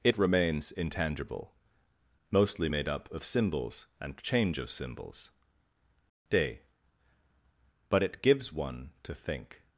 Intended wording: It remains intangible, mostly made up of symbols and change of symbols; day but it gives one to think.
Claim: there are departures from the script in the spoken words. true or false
false